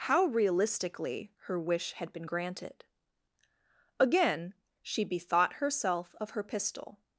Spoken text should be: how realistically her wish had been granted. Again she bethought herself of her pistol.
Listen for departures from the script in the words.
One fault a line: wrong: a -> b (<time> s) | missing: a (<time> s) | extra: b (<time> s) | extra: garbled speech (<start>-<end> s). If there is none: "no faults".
no faults